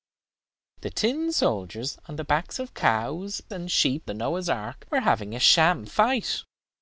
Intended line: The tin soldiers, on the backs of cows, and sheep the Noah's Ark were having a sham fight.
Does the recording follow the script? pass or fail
pass